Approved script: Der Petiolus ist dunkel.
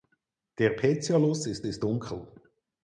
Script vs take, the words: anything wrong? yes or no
yes